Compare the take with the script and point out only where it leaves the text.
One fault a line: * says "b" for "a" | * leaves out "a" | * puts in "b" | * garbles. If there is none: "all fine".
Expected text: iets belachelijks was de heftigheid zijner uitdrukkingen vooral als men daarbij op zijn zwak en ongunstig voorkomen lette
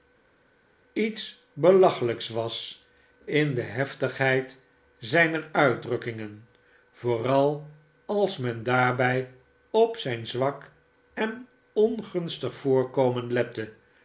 * puts in "in"